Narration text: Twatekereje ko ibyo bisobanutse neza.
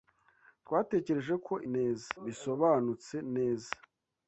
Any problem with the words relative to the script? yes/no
yes